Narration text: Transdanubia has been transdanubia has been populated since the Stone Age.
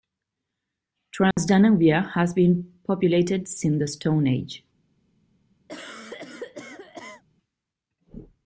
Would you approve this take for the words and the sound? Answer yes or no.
no